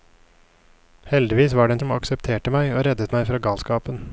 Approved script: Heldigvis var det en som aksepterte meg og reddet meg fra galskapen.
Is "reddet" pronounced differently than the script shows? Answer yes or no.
no